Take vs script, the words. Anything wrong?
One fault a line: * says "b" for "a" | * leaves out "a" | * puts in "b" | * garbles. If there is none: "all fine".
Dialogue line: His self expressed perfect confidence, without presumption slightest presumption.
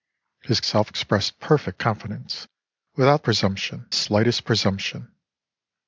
all fine